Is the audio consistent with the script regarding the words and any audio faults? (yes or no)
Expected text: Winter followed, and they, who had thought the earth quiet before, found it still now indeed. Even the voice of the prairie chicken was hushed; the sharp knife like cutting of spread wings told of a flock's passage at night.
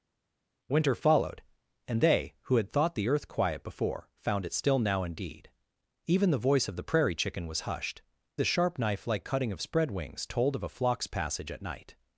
yes